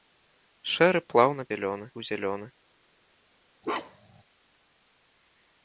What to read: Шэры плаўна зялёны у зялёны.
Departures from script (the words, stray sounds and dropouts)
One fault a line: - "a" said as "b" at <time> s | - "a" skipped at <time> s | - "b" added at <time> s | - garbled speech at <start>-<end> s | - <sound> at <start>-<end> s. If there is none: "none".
- bark at 3.6-4.2 s